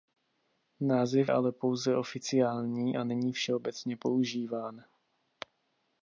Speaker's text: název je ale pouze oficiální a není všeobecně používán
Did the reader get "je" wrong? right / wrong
wrong